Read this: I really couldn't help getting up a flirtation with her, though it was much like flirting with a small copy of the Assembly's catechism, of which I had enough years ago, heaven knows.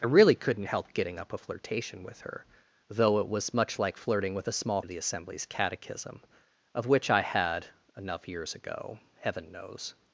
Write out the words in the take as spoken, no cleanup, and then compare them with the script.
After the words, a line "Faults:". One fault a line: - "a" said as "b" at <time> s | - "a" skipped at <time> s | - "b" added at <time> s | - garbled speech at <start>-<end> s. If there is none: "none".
I really couldn't help getting up a flirtation with her, though it was much like flirting with a small of the Assembly's catechism, of which I had enough years ago, heaven knows.
Faults:
- "copy" skipped at 4.8 s